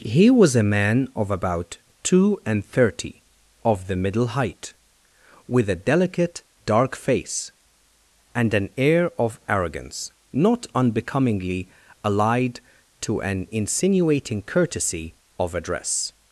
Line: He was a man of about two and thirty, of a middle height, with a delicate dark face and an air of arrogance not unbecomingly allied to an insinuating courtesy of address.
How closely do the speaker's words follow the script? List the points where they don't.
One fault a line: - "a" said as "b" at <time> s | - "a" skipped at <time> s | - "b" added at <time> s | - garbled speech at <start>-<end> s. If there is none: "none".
- "a" said as "the" at 3.9 s